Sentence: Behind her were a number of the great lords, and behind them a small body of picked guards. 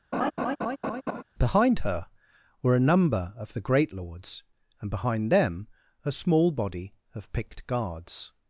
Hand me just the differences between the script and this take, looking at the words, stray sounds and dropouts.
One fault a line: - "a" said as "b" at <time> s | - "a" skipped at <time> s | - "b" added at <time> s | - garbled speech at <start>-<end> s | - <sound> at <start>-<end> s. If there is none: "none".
- laugh at 0.1-1.2 s